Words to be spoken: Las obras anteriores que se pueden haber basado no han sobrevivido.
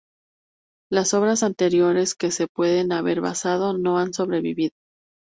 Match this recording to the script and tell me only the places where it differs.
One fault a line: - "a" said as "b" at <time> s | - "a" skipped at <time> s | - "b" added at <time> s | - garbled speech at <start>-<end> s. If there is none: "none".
none